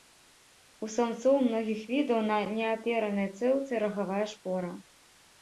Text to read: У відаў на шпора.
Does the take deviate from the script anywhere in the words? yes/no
yes